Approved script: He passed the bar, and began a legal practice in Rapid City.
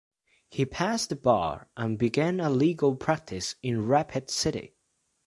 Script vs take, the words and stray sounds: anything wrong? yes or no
no